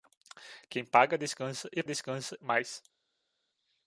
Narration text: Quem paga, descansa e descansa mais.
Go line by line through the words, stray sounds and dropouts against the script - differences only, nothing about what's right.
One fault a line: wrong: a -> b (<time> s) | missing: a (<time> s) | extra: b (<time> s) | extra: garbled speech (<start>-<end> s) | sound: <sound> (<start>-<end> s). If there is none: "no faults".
no faults